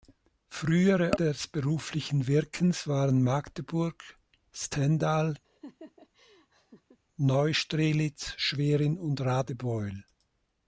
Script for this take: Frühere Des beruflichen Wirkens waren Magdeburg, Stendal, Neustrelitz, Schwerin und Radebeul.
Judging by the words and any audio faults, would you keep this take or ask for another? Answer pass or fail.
fail